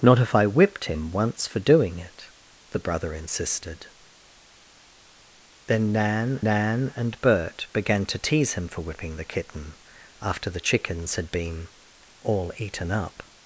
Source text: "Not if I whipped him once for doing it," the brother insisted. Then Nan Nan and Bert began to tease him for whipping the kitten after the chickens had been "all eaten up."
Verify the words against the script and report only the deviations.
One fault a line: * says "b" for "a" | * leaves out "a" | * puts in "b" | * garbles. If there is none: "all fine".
all fine